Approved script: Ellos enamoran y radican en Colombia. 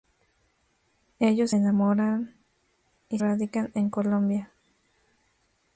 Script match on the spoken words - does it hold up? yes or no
yes